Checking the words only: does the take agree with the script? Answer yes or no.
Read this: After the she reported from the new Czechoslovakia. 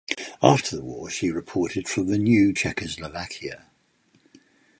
no